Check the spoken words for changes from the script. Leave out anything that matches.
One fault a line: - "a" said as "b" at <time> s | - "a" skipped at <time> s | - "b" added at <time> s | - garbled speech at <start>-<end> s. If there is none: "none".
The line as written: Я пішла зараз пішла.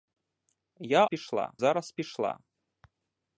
none